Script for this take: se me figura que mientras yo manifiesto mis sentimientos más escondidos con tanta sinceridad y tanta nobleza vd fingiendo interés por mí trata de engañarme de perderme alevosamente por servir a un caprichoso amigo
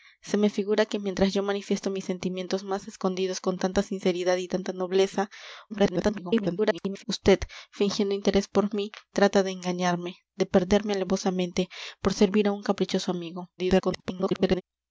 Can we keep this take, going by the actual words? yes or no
no